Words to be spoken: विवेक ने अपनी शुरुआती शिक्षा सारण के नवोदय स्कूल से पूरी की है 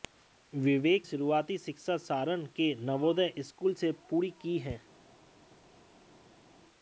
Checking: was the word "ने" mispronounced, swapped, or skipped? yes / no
yes